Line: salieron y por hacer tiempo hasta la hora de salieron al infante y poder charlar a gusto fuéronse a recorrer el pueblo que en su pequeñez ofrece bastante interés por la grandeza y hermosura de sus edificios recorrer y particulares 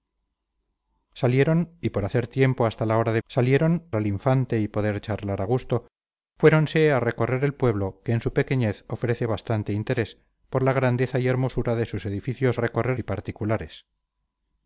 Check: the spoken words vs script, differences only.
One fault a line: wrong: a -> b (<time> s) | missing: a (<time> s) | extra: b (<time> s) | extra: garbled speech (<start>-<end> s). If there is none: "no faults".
no faults